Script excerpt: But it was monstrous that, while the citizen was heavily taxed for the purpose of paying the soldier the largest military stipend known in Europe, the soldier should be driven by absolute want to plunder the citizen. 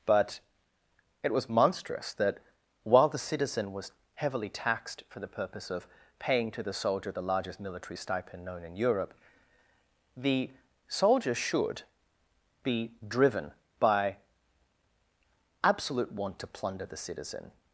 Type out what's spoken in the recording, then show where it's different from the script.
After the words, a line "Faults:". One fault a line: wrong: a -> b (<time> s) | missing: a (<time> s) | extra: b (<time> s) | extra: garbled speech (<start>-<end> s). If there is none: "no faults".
But it was monstrous that, while the citizen was heavily taxed for the purpose of paying to the soldier the largest military stipend known in Europe, the soldier should be driven by absolute want to plunder the citizen.
Faults:
extra: to (6.5 s)